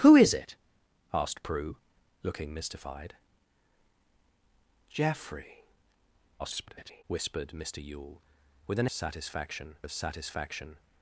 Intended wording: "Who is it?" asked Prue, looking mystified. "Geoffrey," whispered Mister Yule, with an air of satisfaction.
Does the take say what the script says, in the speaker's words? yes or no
no